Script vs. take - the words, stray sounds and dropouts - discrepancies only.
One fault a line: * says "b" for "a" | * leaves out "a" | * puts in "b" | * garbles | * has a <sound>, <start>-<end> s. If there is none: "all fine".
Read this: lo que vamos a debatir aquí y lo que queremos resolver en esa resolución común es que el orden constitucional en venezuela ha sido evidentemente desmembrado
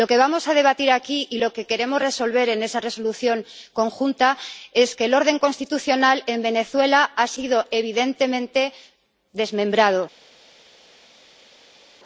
all fine